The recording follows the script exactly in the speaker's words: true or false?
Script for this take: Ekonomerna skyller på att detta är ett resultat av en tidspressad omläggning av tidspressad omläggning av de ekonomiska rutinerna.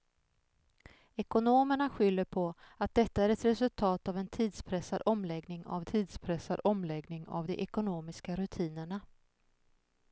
true